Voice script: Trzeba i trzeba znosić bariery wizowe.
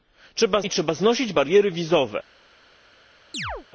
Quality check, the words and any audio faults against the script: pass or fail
fail